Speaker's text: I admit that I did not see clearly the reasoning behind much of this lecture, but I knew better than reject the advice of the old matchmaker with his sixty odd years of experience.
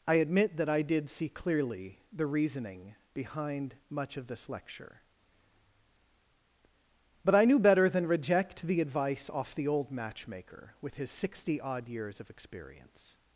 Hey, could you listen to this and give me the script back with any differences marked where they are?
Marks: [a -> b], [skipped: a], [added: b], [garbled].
I admit that I did [skipped: not] see clearly the reasoning behind much of this lecture, but I knew better than reject the advice [of -> off] the old matchmaker with his sixty odd years of experience.